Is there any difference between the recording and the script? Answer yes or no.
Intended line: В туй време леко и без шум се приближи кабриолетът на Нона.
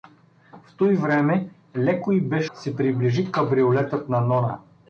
yes